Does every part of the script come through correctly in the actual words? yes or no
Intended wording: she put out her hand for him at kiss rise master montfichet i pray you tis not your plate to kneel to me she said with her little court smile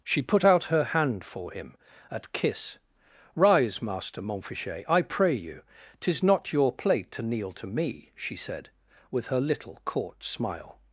yes